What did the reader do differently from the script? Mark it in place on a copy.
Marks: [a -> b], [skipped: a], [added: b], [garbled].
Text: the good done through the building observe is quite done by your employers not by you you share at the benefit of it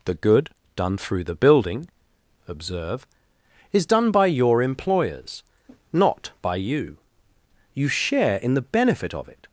the good done through the building observe is [skipped: quite] done by your employers not by you you share [at -> in] the benefit of it